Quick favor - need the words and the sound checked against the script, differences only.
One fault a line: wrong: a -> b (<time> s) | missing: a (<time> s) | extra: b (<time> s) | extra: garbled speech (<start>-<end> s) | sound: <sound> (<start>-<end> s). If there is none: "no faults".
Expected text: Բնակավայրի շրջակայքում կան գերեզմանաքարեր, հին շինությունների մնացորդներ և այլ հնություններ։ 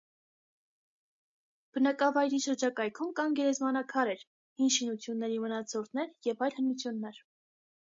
no faults